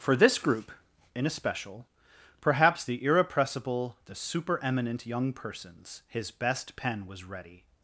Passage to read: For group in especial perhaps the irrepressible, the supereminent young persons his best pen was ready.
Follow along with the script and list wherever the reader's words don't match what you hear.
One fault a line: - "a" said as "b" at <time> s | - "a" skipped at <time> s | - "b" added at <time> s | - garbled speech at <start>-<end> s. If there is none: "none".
- "this" added at 0.1 s